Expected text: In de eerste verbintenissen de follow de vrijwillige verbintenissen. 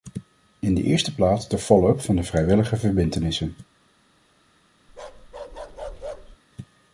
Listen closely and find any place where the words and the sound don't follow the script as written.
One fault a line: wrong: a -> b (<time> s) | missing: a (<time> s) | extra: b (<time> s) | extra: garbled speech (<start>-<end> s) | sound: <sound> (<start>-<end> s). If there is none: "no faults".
wrong: verbintenissen -> plaats (1.1 s)
extra: up van (1.9 s)
sound: bark (4.9-6.4 s)